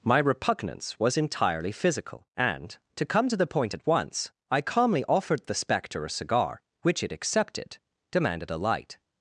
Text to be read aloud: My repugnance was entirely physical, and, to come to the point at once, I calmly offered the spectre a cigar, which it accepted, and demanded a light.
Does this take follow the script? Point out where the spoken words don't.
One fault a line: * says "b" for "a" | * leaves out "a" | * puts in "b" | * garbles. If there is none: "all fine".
* leaves out "and"